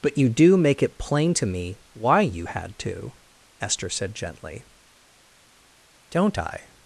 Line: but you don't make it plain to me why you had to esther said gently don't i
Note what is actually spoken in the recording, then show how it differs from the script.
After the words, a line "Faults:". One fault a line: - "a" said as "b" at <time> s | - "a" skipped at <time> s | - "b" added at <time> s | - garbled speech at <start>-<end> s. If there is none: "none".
but you do make it plain to me why you had to esther said gently don't i
Faults:
- "don't" said as "do" at 0.3 s